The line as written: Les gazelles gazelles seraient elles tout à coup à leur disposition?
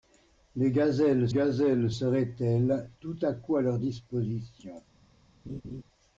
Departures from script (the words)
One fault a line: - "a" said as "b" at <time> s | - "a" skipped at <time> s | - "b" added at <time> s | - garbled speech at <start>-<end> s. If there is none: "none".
none